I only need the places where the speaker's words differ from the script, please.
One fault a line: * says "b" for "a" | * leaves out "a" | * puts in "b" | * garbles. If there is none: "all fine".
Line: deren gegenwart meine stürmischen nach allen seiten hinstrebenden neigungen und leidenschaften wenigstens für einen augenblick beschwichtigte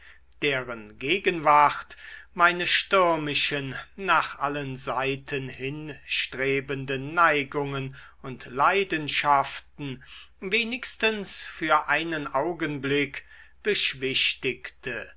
all fine